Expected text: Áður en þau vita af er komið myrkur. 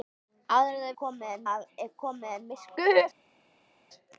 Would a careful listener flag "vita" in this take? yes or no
yes